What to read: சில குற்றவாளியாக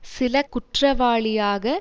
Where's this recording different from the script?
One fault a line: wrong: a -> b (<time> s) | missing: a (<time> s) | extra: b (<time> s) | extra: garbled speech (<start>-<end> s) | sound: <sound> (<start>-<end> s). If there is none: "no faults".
no faults